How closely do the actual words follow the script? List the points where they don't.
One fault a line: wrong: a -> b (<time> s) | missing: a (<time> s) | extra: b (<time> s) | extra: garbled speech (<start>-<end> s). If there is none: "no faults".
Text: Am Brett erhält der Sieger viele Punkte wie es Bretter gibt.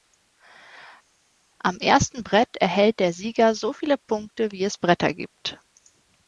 extra: ersten (1.8 s)
extra: so (3.5 s)